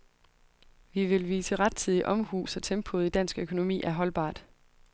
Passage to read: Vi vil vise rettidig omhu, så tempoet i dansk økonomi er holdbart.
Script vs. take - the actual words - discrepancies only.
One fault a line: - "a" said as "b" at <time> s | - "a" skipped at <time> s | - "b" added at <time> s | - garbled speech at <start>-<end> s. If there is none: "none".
none